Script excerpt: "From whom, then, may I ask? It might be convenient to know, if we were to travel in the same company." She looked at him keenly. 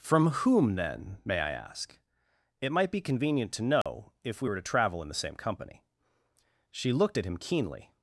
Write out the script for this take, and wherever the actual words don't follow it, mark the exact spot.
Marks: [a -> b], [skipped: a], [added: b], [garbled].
"From whom, then, may I ask? It might be convenient to know, if we were to travel in the same company." She looked at him keenly.